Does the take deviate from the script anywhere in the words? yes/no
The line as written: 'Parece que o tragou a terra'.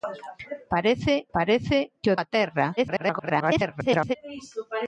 yes